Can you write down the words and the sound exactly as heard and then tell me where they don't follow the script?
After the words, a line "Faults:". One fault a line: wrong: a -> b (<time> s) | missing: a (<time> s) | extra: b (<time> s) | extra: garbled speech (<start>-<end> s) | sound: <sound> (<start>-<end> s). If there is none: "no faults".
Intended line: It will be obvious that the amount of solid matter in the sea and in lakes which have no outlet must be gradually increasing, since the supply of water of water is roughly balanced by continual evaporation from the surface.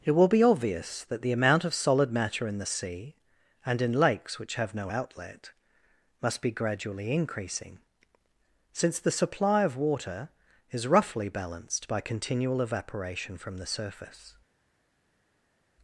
It will be obvious that the amount of solid matter in the sea and in lakes which have no outlet must be gradually increasing, since the supply of water is roughly balanced by continual evaporation from the surface.
Faults:
missing: of water (10.3 s)